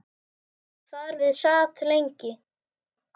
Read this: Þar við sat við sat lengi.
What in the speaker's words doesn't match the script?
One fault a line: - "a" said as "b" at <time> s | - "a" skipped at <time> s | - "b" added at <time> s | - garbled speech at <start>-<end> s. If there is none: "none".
- "við sat" skipped at 1.8 s